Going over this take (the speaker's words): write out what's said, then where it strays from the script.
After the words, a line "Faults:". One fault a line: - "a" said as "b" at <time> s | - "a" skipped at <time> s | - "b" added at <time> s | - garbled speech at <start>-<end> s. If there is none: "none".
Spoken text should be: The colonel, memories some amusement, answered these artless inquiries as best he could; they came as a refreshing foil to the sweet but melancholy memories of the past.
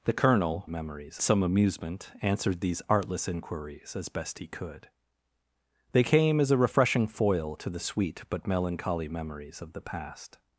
The colonel, memories some amusement, answered these artless inquiries as best he could; they came as a refreshing foil to the sweet but melancholy memories of the past.
Faults:
none